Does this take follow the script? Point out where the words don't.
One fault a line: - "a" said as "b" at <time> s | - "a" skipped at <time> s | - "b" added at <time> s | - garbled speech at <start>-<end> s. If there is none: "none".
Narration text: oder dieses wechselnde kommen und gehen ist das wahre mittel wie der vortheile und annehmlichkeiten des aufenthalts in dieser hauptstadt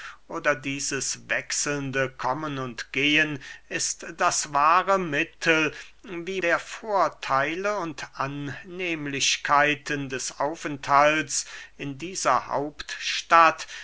none